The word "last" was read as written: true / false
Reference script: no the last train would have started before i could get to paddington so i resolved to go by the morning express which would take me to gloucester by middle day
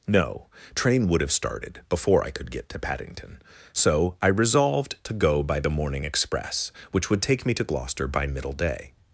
false